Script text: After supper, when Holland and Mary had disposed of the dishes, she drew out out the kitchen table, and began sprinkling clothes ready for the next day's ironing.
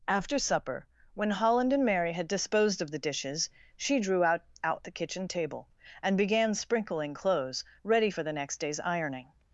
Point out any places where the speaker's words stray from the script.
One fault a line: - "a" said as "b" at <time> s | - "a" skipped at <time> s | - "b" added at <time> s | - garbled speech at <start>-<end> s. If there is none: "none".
none